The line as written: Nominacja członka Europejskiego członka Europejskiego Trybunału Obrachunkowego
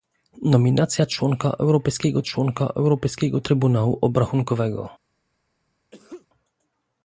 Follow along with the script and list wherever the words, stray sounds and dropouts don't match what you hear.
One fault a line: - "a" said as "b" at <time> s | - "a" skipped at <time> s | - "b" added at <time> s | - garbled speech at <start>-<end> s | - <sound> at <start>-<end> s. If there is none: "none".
- sneeze at 5.9-6.3 s